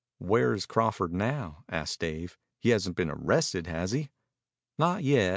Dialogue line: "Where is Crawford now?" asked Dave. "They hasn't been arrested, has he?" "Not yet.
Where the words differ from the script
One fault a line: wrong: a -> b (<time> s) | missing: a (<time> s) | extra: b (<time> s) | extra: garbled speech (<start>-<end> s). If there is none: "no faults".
wrong: They -> He (2.6 s)